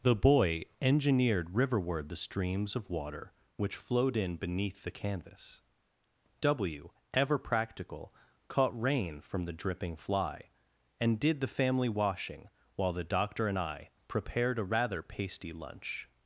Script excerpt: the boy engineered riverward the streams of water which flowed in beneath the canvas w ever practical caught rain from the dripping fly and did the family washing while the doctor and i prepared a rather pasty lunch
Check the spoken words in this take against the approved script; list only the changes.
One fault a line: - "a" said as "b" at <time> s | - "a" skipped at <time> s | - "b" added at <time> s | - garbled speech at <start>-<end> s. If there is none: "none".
none